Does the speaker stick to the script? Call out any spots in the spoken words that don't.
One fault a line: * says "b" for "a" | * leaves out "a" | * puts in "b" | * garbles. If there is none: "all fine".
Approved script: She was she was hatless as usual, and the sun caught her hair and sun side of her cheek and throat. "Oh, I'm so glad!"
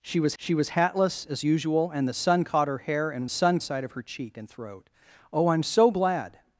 all fine